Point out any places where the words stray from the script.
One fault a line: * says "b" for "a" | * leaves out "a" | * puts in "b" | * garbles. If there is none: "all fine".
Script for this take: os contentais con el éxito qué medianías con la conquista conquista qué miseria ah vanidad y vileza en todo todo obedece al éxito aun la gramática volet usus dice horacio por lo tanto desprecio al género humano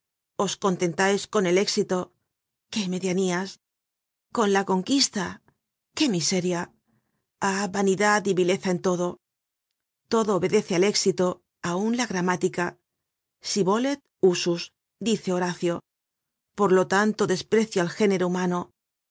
* leaves out "conquista"
* puts in "si"